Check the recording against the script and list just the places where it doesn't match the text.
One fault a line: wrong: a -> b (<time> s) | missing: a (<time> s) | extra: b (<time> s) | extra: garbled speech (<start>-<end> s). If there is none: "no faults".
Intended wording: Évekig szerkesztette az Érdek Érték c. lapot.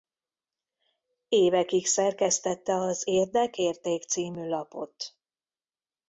no faults